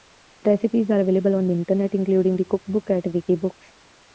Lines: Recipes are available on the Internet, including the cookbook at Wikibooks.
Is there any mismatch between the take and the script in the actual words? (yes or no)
no